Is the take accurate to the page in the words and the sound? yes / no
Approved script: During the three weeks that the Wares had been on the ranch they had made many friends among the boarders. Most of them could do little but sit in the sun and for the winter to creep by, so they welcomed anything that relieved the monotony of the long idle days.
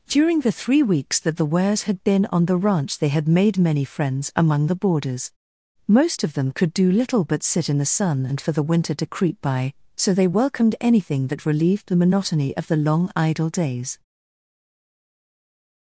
yes